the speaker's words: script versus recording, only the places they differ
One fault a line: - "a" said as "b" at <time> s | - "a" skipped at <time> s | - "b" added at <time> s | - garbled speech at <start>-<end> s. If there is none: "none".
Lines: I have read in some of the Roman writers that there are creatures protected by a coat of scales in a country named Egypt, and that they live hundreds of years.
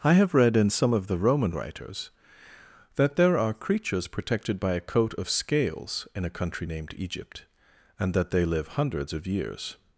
none